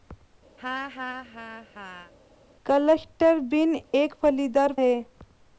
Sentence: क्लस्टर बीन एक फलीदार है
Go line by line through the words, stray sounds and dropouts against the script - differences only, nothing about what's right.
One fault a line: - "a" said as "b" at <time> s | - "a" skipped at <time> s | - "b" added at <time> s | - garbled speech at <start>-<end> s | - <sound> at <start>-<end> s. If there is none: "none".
- laugh at 0.6-2.1 s
- dropout at 3.9-3.9 s